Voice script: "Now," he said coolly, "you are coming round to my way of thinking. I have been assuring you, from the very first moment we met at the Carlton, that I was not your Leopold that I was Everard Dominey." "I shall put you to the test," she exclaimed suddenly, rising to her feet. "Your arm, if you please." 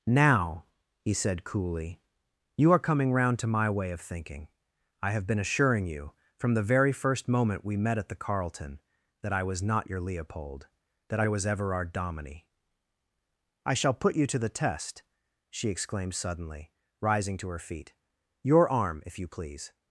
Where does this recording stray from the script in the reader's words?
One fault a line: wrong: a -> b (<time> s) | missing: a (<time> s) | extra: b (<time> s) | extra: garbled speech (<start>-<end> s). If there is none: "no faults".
no faults